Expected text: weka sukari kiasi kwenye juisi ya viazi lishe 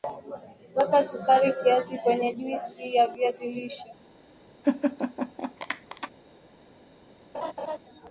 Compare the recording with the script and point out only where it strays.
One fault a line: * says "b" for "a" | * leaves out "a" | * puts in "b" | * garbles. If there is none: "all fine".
all fine